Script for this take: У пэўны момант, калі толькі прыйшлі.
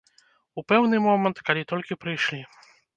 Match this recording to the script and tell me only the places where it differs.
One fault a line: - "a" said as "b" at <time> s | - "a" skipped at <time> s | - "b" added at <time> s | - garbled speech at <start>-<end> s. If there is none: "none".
none